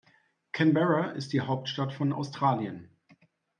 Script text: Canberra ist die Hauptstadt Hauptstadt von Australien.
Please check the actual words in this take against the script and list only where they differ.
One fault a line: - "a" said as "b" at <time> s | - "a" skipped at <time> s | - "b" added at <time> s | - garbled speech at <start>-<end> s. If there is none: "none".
- "Hauptstadt" skipped at 1.9 s